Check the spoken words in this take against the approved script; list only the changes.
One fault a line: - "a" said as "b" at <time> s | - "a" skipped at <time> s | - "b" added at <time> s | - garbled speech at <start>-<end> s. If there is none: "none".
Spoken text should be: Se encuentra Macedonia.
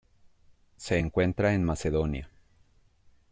- "en" added at 1.5 s